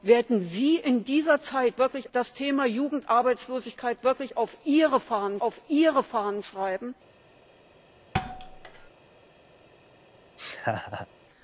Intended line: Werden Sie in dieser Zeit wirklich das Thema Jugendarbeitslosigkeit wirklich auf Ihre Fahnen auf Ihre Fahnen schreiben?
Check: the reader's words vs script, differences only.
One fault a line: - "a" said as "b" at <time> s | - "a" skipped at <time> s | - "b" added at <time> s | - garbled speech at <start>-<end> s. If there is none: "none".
none